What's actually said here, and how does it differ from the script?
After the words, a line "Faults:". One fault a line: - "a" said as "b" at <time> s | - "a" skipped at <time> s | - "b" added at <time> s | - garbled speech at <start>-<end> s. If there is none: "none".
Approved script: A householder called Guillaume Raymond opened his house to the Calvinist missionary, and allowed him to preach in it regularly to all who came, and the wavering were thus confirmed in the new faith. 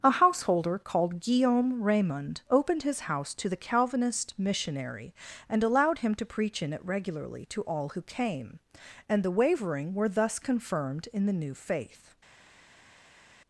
A householder called Guillaume Raymond opened his house to the Calvinist missionary, and allowed him to preach in it regularly to all who came, and the wavering were thus confirmed in the new faith.
Faults:
none